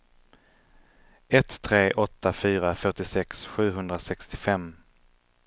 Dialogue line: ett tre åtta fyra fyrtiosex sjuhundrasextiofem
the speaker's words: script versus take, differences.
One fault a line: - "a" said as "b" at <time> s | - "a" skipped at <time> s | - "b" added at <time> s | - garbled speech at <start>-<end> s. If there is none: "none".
none